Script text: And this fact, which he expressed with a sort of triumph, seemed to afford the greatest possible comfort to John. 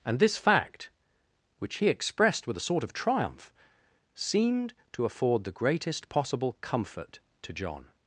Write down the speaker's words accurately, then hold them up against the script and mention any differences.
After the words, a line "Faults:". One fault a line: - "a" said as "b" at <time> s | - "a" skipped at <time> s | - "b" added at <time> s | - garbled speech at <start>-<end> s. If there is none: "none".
And this fact, which he expressed with a sort of triumph, seemed to afford the greatest possible comfort to John.
Faults:
none